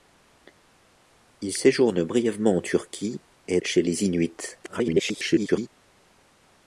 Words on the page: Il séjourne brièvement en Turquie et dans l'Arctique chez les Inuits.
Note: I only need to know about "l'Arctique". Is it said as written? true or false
false